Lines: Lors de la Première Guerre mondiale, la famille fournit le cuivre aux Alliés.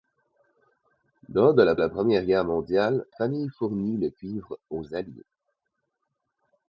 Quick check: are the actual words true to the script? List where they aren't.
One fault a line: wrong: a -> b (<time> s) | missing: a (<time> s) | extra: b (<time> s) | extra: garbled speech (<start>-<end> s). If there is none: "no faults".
extra: la (1.7 s)
missing: la (3.0 s)